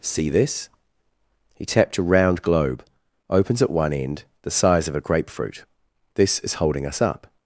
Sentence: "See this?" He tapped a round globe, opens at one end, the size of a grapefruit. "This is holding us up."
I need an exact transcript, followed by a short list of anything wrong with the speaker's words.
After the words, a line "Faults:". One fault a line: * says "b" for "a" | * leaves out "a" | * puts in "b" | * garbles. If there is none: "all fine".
"See this?" He tapped a round globe, opens at one end, the size of a grapefruit. "This is holding us up."
Faults:
all fine